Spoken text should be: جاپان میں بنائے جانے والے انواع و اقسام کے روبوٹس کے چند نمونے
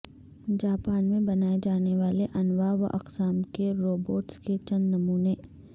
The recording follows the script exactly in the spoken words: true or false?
true